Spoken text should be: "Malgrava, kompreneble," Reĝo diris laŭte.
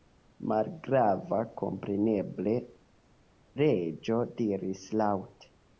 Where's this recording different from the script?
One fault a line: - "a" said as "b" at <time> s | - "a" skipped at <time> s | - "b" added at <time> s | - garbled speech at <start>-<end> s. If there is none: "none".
none